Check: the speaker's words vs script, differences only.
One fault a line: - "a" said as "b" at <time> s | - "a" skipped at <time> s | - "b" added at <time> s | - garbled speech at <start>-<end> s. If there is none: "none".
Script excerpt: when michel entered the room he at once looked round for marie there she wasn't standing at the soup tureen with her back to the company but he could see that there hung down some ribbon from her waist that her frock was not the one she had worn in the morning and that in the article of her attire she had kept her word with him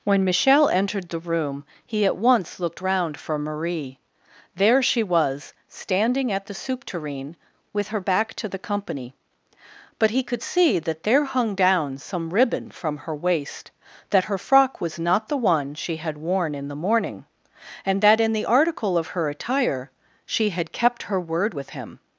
- "wasn't" said as "was" at 5.0 s